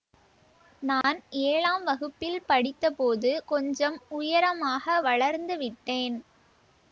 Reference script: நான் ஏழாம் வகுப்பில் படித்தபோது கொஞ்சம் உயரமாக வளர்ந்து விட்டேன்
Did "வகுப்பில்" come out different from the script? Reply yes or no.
no